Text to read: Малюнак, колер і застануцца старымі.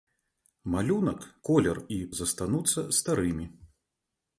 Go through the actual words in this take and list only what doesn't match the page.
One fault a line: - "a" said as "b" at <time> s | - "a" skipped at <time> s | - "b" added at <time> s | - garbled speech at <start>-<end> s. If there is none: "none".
none